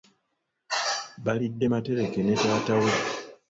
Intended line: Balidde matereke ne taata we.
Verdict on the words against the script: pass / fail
pass